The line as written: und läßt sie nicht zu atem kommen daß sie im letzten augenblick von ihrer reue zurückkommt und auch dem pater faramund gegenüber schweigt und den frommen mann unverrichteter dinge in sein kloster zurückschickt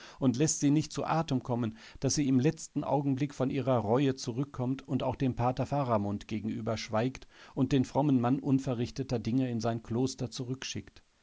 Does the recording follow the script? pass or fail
pass